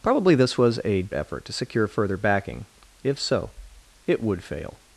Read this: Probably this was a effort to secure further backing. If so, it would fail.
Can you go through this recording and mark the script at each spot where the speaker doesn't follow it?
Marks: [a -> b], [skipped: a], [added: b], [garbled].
Probably this was a effort to secure further backing. If so, it would fail.